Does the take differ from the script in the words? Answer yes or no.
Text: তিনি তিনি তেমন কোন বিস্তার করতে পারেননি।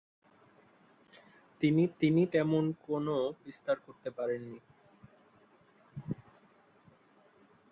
no